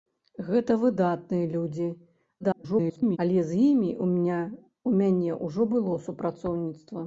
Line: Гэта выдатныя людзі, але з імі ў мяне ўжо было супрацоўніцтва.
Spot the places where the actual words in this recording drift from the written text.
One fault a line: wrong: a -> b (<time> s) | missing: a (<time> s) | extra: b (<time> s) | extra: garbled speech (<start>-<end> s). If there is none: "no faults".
extra: garbled speech (2.4-3.2 s)